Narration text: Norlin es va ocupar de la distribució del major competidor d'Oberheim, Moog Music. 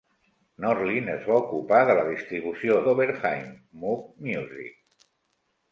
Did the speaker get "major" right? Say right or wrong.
wrong